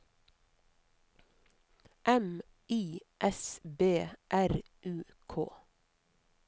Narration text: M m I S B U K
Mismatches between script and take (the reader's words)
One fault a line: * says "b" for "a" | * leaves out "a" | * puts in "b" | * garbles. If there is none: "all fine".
* leaves out "m"
* puts in "R"